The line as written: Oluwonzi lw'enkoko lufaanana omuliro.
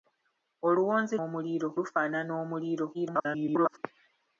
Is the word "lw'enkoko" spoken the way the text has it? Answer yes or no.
no